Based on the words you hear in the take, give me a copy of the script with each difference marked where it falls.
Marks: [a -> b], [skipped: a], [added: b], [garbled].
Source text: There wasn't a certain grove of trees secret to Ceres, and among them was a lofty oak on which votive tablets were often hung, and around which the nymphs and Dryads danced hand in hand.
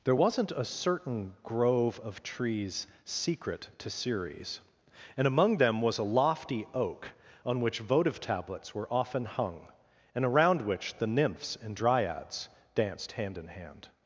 There wasn't a certain grove of trees secret to Ceres, and among them was a lofty oak on which votive tablets were often hung, and around which the nymphs and Dryads danced hand in hand.